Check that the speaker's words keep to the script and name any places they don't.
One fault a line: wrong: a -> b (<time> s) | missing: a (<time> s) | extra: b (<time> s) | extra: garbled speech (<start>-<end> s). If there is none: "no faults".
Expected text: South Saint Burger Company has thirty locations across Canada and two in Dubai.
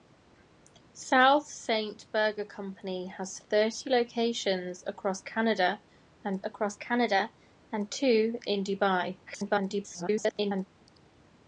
extra: across Canada and (6.4 s)
extra: garbled speech (9.3-10.7 s)